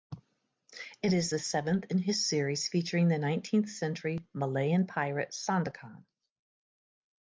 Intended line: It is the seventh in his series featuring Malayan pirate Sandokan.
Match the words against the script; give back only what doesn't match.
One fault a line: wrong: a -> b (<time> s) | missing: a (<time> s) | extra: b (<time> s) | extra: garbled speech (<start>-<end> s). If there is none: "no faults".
extra: the nineteenth century (3.1 s)